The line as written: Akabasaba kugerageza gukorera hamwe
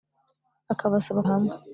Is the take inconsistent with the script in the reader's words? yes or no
yes